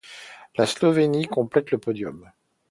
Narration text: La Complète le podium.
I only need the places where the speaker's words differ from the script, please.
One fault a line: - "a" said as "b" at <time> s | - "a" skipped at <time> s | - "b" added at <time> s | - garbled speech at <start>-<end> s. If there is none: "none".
- "Slovénie" added at 0.7 s